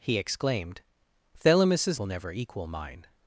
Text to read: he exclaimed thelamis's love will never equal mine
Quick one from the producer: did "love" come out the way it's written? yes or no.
no